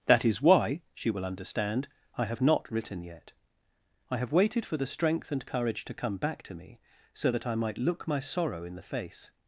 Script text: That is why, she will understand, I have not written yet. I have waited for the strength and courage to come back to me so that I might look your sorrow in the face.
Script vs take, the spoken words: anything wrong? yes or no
yes